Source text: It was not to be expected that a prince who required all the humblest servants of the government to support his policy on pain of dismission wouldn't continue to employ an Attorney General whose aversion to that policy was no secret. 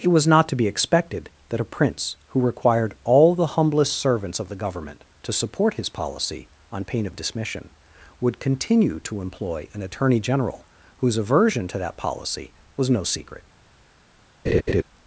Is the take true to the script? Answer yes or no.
no